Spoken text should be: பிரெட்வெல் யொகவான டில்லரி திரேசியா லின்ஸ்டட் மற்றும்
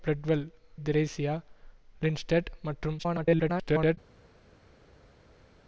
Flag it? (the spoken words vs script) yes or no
yes